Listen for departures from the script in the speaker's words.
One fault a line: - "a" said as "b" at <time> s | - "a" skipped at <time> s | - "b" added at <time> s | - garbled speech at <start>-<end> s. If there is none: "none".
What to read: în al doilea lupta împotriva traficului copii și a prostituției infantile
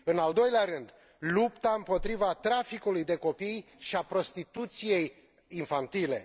- "rând" added at 0.6 s
- "de" added at 3.0 s